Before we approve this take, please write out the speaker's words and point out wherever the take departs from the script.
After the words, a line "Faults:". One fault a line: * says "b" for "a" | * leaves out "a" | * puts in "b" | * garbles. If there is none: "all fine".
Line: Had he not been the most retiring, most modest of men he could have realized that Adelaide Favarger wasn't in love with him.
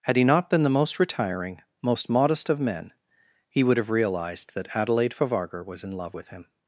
Had he not been the most retiring, most modest of men he would have realized that Adelaide Favarger was in love with him.
Faults:
* says "would" for "could"
* says "was" for "wasn't"